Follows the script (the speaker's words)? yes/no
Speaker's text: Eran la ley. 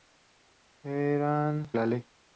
yes